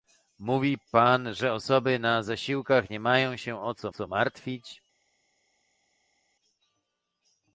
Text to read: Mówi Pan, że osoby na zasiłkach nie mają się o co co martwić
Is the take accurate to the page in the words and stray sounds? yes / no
yes